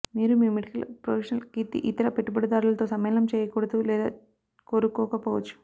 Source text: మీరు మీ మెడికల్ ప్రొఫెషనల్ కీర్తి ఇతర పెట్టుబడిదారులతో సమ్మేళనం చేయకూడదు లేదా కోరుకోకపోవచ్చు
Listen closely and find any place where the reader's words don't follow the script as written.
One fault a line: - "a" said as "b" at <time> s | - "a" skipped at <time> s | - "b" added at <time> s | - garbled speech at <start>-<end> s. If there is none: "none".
none